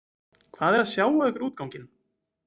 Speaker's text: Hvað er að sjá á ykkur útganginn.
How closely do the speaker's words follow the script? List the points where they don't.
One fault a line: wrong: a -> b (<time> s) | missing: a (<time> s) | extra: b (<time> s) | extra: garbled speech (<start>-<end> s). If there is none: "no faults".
no faults